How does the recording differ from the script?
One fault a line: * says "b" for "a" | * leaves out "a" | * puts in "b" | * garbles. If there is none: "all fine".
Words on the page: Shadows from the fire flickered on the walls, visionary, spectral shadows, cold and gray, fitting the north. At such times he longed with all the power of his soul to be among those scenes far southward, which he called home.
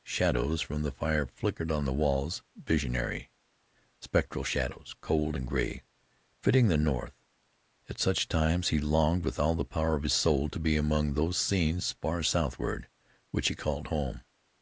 all fine